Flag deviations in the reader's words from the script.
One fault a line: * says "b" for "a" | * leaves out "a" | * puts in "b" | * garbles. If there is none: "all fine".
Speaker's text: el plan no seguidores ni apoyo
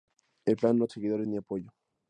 all fine